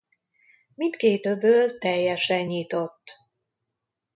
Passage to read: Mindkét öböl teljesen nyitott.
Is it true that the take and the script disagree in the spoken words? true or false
false